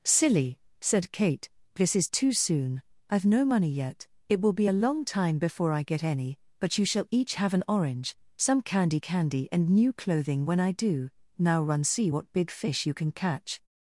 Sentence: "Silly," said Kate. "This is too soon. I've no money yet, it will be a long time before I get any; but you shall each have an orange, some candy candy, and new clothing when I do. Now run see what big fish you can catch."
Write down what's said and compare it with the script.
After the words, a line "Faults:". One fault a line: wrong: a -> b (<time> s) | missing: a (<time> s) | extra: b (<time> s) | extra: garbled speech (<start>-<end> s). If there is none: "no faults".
"Silly," said Kate. "This is too soon. I've no money yet, it will be a long time before I get any; but you shall each have an orange, some candy candy, and new clothing when I do. Now run see what big fish you can catch."
Faults:
no faults